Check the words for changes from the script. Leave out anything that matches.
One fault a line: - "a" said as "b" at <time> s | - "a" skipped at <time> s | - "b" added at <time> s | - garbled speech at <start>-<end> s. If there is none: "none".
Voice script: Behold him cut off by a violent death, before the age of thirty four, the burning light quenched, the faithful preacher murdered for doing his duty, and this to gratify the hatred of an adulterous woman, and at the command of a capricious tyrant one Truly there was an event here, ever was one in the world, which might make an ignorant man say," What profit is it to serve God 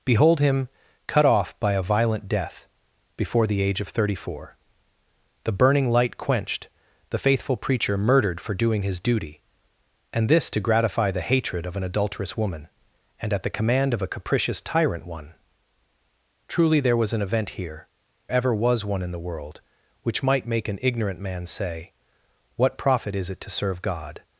none